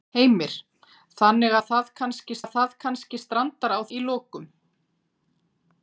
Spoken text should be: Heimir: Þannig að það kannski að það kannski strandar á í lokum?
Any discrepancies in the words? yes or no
no